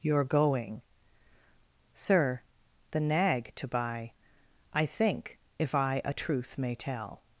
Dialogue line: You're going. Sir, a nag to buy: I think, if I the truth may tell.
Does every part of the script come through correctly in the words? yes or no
no